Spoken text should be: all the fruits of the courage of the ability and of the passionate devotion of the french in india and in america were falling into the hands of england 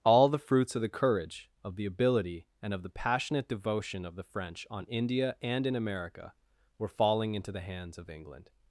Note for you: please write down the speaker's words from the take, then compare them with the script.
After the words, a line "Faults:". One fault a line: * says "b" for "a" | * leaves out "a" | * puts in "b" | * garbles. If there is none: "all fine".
all the fruits of the courage of the ability and of the passionate devotion of the french on india and in america were falling into the hands of england
Faults:
* says "on" for "in"